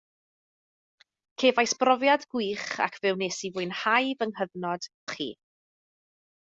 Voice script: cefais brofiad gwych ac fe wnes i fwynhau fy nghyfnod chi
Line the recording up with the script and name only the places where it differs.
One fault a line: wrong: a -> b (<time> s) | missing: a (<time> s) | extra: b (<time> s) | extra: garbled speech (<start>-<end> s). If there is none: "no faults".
no faults